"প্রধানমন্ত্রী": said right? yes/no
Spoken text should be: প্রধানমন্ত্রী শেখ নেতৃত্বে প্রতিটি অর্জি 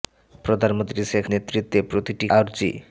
yes